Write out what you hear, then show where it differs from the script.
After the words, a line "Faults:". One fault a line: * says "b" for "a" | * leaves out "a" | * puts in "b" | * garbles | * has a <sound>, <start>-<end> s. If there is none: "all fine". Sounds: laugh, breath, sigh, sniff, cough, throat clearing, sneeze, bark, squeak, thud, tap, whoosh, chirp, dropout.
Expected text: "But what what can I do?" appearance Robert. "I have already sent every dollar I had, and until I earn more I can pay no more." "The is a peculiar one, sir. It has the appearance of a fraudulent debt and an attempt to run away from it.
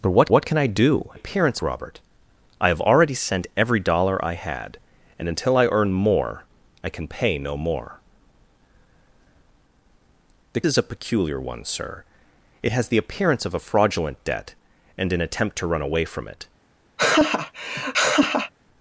"But what what can I do?" appearance Robert. "I have already sent every dollar I had, and until I earn more I can pay no more." "The is a peculiar one, sir. It has the appearance of a fraudulent debt and an attempt to run away from it.
Faults:
* has a laugh, 17.0-18.5 s